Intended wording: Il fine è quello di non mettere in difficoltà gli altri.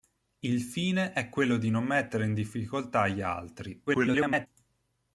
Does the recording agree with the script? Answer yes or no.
no